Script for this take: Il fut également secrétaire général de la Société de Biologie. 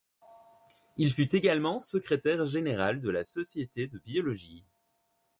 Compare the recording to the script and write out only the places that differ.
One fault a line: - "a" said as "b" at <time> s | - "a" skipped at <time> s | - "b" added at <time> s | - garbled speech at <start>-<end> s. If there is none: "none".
none